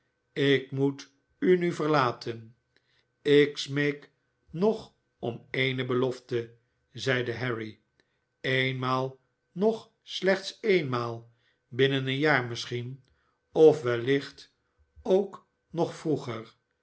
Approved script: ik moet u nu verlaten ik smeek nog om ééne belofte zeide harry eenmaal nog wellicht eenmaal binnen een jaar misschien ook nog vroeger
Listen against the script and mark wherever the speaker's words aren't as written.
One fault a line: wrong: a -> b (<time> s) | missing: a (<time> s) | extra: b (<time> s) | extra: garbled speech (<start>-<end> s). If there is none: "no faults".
wrong: wellicht -> slechts (10.0 s)
extra: of wellicht (13.5 s)